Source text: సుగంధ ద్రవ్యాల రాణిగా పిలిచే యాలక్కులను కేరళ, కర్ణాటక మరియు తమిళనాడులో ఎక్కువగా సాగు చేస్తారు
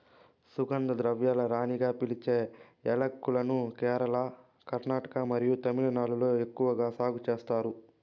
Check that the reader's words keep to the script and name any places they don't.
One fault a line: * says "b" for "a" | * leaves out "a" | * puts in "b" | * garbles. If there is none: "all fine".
all fine